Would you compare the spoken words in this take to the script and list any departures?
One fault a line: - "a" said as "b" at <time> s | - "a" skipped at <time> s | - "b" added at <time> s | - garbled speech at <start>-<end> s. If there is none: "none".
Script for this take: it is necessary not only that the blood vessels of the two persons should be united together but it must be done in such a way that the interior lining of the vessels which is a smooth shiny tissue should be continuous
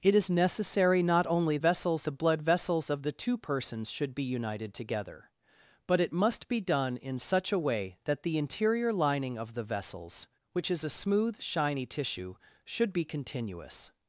- "that" said as "vessels" at 1.6 s